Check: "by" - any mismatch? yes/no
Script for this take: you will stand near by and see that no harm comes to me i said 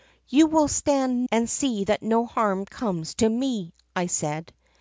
yes